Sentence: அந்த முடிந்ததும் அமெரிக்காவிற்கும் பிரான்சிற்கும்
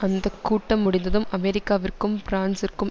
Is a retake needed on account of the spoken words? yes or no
yes